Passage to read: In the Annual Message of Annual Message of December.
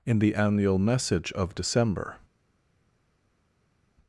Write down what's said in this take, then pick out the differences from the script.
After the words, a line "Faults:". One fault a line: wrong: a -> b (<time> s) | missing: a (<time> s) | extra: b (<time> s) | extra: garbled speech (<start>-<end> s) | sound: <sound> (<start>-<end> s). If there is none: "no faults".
In the Annual Message of December.
Faults:
missing: Annual Message of (1.5 s)